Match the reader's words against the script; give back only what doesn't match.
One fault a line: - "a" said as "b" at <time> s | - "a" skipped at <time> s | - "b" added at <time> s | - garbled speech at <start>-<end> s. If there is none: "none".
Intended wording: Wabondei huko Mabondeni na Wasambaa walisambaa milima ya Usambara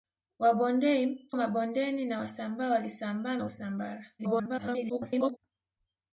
- "huko" skipped at 1.3 s
- "milima" skipped at 3.4 s
- garbled speech at 4.2-5.4 s